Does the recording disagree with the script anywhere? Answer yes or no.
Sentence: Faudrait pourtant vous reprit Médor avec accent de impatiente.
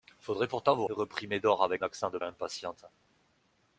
no